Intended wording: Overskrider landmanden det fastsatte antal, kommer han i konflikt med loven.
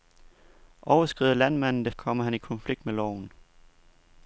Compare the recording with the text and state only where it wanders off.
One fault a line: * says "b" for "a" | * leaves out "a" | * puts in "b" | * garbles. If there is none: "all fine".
* leaves out "fastsatte antal"